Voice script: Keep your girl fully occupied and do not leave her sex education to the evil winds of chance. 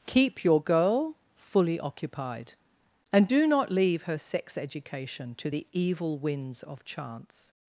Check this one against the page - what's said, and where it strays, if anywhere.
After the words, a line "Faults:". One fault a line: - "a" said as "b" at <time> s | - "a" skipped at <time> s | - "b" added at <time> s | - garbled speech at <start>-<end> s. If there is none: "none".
Keep your girl fully occupied and do not leave her sex education to the evil winds of chance.
Faults:
none